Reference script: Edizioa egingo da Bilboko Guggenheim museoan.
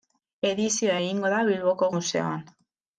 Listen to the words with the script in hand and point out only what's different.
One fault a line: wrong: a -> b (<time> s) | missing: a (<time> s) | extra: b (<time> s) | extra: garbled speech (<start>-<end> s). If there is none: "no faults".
missing: Guggenheim (1.9 s)